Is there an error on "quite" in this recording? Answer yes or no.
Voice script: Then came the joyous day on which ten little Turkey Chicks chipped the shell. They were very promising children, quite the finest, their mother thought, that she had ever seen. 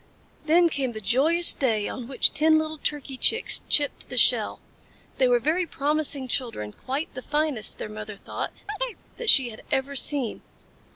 no